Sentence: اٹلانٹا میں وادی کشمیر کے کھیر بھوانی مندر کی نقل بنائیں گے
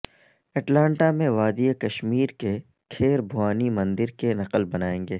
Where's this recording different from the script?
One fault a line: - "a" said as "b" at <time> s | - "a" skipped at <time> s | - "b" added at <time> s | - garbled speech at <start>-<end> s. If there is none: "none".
none